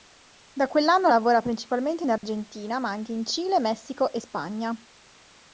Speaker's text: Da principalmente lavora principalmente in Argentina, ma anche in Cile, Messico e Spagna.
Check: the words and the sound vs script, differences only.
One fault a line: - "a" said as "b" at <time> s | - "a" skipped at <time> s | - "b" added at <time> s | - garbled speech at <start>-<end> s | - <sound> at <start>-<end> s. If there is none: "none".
- "principalmente" said as "quell'anno" at 0.7 s
- dropout at 2.2-2.2 s